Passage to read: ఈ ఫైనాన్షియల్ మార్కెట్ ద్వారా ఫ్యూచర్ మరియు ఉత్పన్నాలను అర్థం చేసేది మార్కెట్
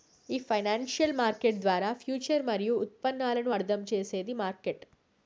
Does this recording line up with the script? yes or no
yes